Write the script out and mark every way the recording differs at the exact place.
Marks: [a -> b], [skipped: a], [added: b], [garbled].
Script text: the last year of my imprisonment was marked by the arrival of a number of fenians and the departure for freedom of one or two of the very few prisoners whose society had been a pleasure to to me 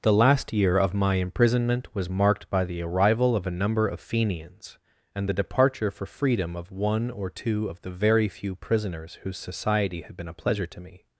the last year of my imprisonment was marked by the arrival of a number of fenians and the departure for freedom of one or two of the very few prisoners whose society had been a pleasure to [skipped: to] me